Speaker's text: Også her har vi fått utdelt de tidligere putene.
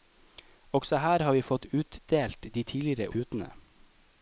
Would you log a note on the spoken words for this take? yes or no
no